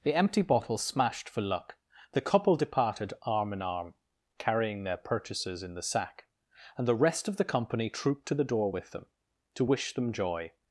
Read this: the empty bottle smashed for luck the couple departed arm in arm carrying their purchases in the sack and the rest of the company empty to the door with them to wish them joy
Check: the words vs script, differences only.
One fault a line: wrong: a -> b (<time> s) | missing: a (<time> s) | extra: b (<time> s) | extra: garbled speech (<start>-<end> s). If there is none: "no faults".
wrong: empty -> trooped (7.9 s)